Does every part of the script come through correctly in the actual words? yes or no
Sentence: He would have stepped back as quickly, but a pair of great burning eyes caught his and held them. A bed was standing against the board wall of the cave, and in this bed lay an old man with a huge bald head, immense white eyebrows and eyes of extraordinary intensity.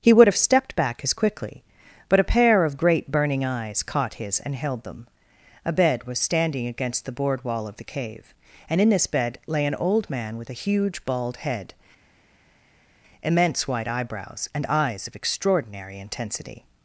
yes